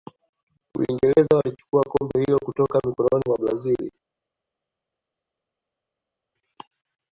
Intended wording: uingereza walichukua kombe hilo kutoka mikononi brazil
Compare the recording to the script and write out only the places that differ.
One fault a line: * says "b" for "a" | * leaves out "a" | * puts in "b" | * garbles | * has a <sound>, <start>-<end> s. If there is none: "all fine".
* puts in "mwa"